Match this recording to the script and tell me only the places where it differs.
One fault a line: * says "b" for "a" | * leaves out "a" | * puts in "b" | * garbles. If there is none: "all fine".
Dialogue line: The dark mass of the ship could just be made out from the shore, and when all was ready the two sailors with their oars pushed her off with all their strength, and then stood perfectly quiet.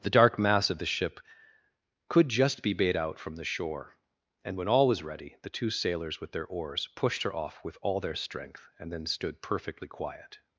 all fine